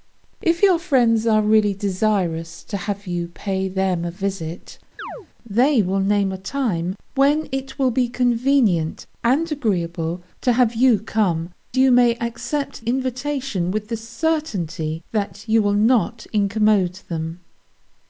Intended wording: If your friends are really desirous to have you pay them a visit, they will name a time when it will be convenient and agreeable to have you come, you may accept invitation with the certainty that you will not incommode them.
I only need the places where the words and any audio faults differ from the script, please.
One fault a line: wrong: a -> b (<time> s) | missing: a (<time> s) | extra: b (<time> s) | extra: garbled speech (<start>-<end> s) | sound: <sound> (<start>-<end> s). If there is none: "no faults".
sound: chirp (5.0-5.3 s)